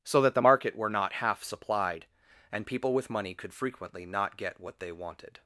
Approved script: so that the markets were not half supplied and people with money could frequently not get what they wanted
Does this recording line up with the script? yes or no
no